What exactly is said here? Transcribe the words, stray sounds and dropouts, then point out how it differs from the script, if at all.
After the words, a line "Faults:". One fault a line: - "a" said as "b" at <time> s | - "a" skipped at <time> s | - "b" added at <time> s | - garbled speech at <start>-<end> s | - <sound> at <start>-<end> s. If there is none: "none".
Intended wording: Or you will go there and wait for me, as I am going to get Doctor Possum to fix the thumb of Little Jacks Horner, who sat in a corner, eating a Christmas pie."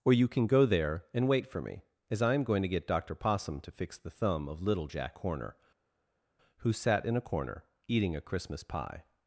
Or you can go there and wait for me, as I am going to get Doctor Possum to fix the thumb of Little Jack Horner, who sat in a corner, eating a Christmas pie."
Faults:
- "will" said as "can" at 0.3 s
- "Jacks" said as "Jack" at 4.9 s